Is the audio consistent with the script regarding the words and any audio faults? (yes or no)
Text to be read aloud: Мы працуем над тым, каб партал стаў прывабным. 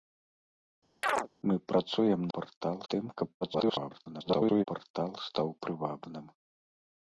no